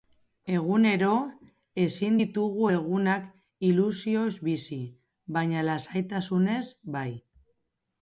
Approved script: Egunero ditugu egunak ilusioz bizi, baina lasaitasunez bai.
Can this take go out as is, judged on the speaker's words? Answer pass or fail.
fail